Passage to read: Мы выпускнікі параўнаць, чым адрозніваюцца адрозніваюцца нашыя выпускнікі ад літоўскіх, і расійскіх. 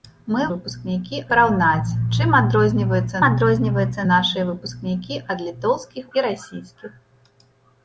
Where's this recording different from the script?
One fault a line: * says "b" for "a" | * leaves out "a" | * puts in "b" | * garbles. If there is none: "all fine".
all fine